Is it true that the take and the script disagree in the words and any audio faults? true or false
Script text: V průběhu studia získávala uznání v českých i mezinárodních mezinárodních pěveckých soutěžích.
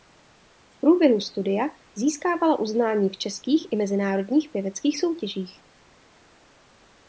true